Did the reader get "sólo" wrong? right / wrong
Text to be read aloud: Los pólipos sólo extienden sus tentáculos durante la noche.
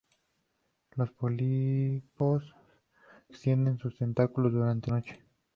wrong